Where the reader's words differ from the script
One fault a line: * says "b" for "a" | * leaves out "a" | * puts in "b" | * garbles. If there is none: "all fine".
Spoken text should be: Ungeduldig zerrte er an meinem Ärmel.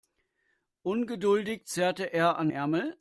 * leaves out "meinem"